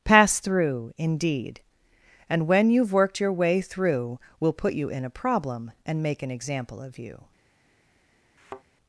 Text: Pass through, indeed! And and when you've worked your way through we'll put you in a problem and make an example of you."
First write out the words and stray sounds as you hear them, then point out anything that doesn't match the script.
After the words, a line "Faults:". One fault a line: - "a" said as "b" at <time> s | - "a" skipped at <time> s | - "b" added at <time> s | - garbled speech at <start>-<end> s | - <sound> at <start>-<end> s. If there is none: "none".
Pass through, indeed! And when you've worked your way through we'll put you in a problem and make an example of you."
Faults:
- "and" skipped at 2.5 s
- thud at 8.4-8.6 s